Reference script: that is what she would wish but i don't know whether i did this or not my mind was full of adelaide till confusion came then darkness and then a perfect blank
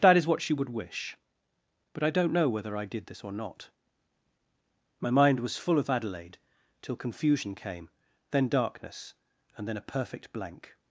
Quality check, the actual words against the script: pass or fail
pass